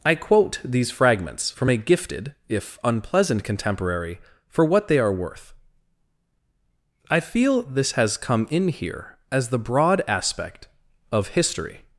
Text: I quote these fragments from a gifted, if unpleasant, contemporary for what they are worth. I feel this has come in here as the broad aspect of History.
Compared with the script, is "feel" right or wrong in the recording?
right